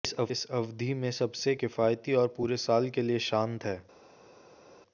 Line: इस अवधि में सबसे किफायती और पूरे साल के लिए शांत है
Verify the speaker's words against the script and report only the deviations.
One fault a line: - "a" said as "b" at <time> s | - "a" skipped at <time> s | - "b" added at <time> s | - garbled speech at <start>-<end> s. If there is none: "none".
none